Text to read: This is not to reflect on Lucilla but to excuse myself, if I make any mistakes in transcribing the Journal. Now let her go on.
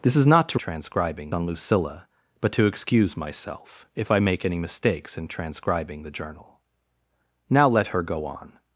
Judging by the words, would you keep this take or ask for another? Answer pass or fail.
fail